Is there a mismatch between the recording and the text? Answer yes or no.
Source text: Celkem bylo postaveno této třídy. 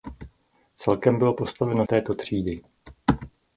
no